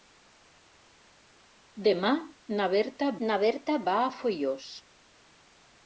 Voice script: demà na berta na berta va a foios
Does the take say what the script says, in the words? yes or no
yes